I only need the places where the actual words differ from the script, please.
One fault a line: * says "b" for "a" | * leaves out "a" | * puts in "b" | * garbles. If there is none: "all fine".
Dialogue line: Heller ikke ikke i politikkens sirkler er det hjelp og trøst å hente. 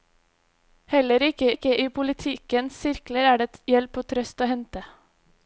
all fine